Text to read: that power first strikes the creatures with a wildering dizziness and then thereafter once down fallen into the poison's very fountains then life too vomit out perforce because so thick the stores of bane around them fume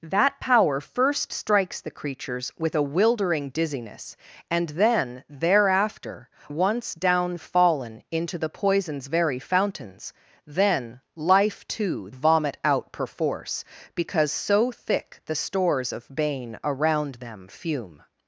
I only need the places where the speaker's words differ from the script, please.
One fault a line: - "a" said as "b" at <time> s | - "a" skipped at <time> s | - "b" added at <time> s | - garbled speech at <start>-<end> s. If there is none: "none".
none